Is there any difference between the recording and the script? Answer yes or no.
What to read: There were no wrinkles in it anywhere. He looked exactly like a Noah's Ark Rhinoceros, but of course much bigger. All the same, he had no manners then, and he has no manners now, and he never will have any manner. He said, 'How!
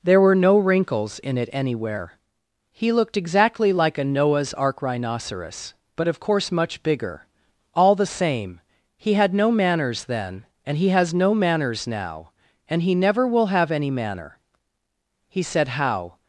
no